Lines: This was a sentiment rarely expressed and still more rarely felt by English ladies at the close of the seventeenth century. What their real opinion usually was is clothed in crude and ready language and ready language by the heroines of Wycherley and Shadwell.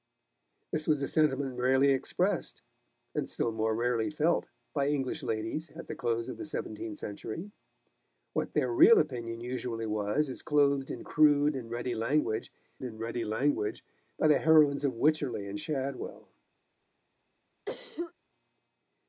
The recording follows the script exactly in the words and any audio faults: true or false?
false